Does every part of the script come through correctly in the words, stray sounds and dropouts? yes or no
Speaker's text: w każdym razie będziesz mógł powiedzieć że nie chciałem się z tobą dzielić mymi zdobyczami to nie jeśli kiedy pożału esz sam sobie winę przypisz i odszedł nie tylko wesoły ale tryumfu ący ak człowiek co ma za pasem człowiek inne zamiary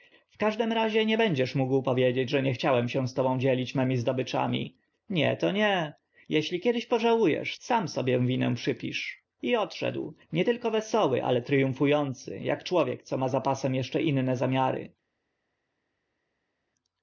no